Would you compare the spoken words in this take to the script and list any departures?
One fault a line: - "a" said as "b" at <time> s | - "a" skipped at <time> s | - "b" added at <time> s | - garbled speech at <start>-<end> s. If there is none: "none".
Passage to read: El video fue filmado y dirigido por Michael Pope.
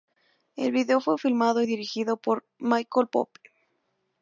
none